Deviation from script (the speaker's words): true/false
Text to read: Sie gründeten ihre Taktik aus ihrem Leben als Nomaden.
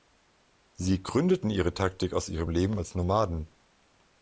false